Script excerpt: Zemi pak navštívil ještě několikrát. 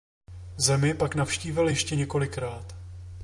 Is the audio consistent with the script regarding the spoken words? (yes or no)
yes